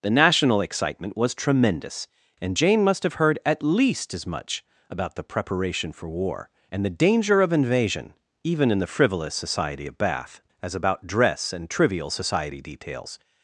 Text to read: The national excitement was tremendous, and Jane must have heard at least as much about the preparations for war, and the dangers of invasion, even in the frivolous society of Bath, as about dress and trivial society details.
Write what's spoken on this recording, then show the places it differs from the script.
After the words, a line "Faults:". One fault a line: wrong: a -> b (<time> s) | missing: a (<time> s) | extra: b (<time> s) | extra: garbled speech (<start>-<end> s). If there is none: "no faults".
The national excitement was tremendous, and Jane must have heard at least as much about the preparation for war, and the danger of invasion, even in the frivolous society of Bath, as about dress and trivial society details.
Faults:
wrong: preparations -> preparation (5.2 s)
wrong: dangers -> danger (6.9 s)